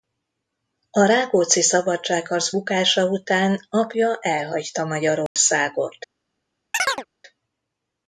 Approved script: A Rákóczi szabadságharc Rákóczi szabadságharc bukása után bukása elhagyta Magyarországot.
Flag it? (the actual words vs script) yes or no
yes